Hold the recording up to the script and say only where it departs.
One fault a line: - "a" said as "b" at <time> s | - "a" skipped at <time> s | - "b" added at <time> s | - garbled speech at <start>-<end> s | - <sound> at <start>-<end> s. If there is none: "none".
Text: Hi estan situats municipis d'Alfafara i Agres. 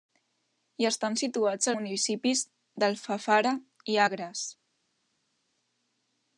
none